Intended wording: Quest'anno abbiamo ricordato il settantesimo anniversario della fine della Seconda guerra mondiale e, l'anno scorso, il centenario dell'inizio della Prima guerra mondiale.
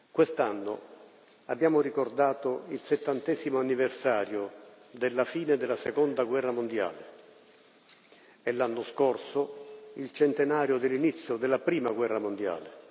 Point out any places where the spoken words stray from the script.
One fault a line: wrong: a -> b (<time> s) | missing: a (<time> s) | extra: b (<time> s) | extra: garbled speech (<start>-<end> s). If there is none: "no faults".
no faults